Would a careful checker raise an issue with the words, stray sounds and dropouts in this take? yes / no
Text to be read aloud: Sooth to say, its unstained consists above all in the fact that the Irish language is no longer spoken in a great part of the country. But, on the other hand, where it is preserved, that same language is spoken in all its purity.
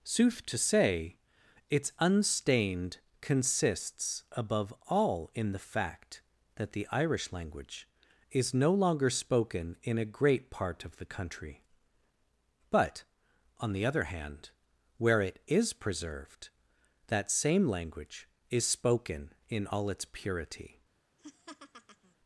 yes